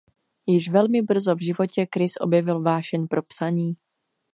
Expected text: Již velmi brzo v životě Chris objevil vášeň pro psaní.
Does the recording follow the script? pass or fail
pass